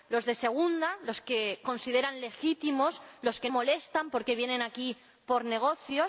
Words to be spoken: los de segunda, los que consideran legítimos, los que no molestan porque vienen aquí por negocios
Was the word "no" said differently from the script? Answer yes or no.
yes